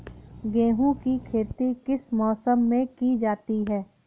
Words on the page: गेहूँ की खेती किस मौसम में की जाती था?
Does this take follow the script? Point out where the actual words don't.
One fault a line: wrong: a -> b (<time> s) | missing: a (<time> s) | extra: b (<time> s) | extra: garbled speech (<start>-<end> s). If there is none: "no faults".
wrong: था -> है (3.6 s)